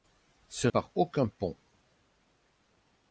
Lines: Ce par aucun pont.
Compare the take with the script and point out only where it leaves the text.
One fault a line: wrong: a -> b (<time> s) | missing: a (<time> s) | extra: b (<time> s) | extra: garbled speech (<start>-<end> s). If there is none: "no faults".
no faults